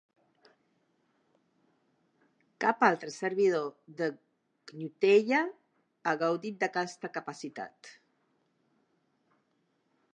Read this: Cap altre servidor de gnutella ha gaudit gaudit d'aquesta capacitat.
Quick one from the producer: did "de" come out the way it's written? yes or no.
yes